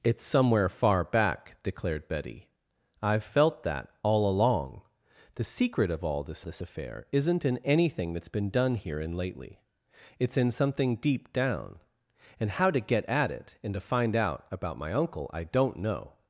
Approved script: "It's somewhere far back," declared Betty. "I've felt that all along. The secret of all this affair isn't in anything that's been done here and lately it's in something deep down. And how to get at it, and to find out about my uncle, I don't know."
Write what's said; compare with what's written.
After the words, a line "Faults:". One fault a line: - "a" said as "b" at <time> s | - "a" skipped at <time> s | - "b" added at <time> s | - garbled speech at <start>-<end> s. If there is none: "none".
"It's somewhere far back," declared Betty. "I've felt that all along. The secret of all this this affair isn't in anything that's been done here and lately it's in something deep down. And how to get at it, and to find out about my uncle, I don't know."
Faults:
- "this" added at 6.4 s